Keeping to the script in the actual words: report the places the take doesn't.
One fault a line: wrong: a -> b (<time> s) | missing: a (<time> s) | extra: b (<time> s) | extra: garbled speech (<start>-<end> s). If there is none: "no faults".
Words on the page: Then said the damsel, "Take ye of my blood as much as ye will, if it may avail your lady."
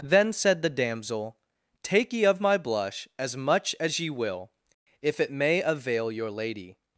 wrong: blood -> blush (2.6 s)